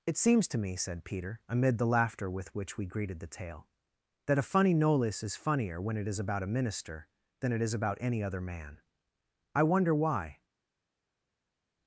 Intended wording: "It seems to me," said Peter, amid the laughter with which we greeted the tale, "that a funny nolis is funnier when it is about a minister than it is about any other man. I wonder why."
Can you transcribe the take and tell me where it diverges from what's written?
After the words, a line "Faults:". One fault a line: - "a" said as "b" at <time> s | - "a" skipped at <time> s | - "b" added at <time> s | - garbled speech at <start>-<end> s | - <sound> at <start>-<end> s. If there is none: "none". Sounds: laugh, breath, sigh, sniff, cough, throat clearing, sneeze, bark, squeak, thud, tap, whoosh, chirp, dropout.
"It seems to me," said Peter, amid the laughter with which we greeted the tale, "that a funny nolis is funnier when it is about a minister than it is about any other man. I wonder why."
Faults:
none